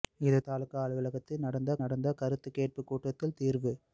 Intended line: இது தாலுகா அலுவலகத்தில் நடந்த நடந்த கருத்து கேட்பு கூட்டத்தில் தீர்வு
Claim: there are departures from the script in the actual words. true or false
false